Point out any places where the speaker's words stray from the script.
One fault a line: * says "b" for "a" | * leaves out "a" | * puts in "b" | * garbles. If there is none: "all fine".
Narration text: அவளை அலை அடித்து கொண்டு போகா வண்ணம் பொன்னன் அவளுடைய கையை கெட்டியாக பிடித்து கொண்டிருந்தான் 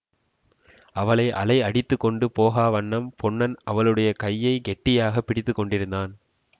all fine